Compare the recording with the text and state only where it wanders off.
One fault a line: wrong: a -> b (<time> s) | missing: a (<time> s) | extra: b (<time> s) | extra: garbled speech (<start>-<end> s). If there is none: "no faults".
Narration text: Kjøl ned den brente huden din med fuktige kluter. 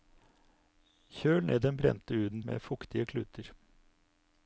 missing: din (2.4 s)